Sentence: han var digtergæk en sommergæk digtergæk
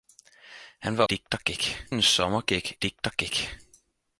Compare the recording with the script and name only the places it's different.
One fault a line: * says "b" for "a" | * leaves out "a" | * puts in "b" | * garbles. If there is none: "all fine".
all fine